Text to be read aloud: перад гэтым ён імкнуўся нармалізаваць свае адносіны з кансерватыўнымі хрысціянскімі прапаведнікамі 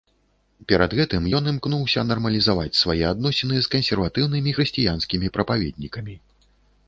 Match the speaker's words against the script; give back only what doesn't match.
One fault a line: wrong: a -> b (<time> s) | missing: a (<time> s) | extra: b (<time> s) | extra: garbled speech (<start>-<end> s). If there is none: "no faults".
no faults